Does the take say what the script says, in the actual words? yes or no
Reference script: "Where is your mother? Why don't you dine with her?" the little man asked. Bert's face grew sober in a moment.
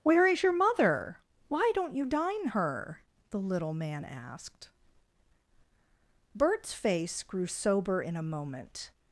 no